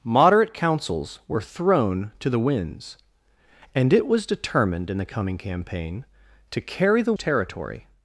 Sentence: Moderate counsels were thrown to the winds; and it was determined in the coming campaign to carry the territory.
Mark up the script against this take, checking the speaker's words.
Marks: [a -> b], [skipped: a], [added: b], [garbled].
Moderate counsels were thrown to the winds; and it was determined in the coming campaign to carry the territory.